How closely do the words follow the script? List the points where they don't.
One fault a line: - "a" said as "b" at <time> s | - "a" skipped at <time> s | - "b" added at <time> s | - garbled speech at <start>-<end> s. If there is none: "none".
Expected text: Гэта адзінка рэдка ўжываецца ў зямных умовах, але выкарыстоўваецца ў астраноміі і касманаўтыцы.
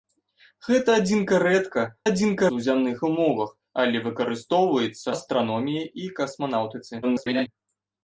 - "ўжываецца" said as "адзінка" at 2.1 s
- "ў" skipped at 5.1 s
- garbled speech at 7.0-7.5 s